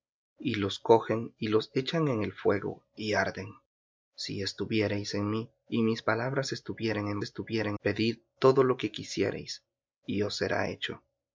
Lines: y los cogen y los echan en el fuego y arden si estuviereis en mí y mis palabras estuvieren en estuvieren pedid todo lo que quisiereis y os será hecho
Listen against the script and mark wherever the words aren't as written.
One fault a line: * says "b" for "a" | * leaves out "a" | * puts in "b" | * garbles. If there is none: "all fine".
all fine